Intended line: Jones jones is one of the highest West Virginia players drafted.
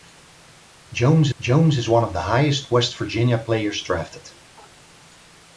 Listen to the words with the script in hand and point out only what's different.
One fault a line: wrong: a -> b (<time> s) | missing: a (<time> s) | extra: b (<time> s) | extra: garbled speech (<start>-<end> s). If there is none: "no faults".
no faults